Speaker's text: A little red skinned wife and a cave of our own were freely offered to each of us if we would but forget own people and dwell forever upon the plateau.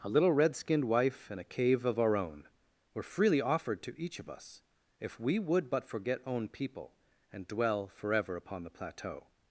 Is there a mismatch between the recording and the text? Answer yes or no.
no